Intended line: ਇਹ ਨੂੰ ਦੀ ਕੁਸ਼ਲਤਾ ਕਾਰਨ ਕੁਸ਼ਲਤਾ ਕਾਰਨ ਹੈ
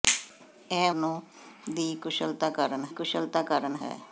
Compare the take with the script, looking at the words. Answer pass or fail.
pass